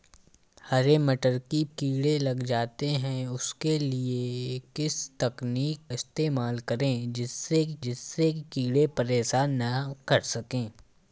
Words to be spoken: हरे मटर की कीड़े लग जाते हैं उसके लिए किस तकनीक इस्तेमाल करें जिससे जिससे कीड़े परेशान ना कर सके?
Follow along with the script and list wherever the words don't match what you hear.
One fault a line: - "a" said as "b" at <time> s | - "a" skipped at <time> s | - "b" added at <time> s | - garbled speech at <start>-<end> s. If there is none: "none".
none